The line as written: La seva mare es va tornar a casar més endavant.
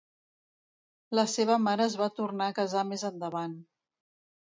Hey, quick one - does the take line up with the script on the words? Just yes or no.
yes